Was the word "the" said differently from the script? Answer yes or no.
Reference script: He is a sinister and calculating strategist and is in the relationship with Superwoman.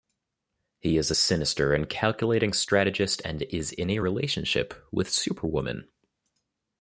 yes